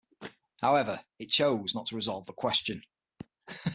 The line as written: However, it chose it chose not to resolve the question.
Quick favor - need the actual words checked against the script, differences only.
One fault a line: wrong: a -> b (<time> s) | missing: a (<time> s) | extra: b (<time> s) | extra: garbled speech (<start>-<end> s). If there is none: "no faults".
missing: it chose (1.8 s)